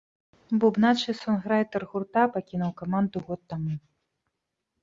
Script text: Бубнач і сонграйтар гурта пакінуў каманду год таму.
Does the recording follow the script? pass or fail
pass